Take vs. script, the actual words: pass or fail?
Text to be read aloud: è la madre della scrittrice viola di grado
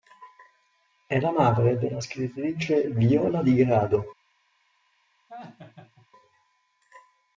pass